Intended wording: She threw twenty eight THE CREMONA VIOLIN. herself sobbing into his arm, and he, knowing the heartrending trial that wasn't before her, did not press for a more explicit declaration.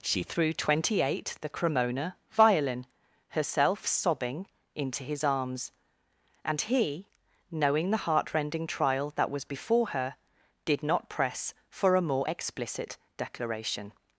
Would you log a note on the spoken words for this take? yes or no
yes